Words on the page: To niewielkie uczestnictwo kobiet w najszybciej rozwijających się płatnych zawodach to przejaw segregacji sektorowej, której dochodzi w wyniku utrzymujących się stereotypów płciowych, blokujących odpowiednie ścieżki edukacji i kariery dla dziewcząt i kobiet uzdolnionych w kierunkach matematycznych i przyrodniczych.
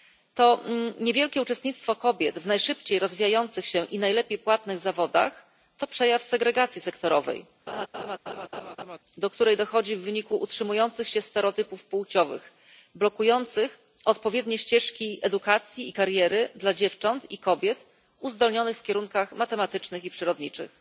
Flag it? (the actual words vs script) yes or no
yes